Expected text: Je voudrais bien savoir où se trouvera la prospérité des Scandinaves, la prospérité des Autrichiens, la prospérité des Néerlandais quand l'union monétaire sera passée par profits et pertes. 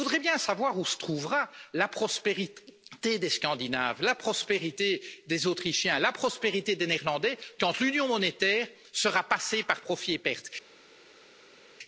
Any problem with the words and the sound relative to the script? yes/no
no